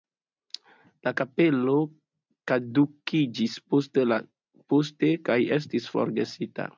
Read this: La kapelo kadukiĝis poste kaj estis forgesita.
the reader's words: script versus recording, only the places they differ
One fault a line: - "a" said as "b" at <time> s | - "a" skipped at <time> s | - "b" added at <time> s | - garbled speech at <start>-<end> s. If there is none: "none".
none